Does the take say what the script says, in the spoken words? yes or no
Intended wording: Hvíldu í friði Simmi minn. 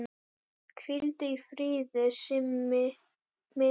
yes